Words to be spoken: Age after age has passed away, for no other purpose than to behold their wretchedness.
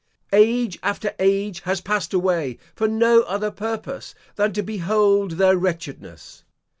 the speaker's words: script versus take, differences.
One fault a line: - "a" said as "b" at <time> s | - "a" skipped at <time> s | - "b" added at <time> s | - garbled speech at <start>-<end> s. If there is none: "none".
none